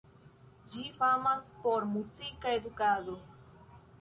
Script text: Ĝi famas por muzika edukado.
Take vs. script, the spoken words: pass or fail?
pass